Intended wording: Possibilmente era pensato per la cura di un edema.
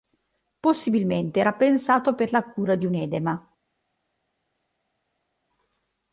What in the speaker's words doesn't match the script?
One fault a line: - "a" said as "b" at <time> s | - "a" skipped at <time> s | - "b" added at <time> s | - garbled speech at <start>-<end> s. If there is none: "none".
none